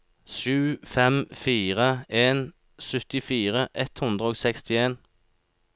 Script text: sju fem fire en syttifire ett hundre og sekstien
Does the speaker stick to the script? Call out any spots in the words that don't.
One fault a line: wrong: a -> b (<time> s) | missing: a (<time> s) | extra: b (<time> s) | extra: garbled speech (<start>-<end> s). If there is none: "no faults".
no faults